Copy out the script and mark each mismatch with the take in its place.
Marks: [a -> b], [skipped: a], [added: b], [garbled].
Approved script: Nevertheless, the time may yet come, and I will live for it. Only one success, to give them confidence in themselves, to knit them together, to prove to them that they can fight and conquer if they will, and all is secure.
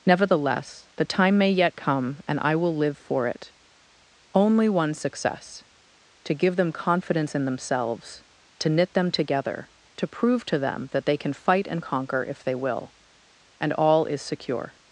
Nevertheless, the time may yet come, and I will live for it. Only one success, to give them confidence in themselves, to knit them together, to prove to them that they can fight and conquer if they will, and all is secure.